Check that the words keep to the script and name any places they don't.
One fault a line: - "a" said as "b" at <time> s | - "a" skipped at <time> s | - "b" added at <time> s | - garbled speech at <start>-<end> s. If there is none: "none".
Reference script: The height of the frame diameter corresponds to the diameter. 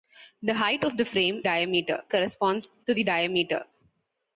none